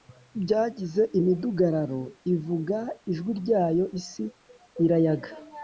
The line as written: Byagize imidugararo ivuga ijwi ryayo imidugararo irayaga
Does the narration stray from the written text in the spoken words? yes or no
yes